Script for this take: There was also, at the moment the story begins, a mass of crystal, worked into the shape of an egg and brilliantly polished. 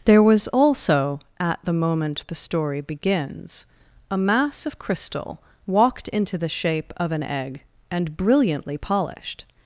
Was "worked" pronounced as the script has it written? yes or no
no